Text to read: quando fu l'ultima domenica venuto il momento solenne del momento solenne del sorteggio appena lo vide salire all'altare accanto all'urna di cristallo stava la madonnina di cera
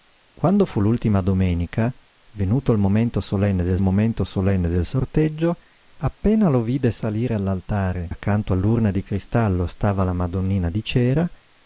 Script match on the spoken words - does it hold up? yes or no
yes